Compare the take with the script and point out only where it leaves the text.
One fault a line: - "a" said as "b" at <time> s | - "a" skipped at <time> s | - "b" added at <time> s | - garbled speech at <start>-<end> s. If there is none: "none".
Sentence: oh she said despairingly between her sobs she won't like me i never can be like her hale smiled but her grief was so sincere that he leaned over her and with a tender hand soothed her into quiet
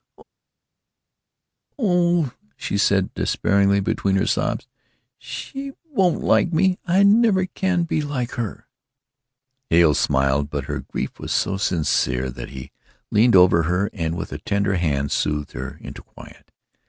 none